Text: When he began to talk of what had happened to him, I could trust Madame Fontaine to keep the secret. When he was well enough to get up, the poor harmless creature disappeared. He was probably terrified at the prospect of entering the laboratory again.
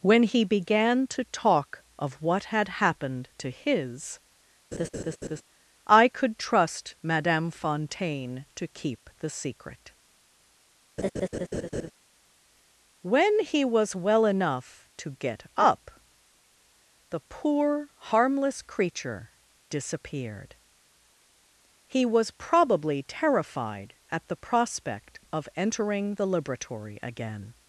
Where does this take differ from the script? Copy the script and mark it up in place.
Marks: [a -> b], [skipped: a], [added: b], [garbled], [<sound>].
When he began to talk of what had happened to [him, -> his] [laugh] I could trust Madame Fontaine to keep the secret. [laugh] When he was well enough to get up, the poor harmless creature disappeared. He was probably terrified at the prospect of entering the laboratory again.